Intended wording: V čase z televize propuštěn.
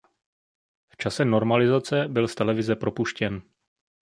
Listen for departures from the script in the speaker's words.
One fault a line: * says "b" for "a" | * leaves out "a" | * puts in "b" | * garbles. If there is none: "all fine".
* puts in "normalizace byl"